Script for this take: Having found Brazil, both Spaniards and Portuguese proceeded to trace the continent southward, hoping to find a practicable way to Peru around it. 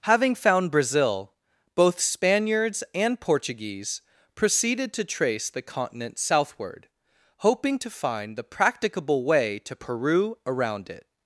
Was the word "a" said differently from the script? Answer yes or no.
yes